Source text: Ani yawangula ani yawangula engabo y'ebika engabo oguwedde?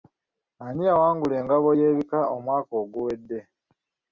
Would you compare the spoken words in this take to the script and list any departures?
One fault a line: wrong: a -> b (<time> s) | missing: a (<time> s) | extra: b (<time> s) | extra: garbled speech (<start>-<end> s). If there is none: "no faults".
missing: ani yawangula (1.4 s)
wrong: engabo -> omwaka (2.4 s)